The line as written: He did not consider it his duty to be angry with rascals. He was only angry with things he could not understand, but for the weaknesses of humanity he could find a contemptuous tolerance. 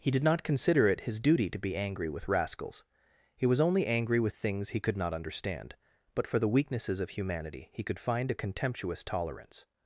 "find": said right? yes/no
yes